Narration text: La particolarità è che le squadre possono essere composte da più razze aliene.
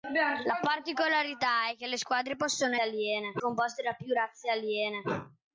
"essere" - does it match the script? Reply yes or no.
no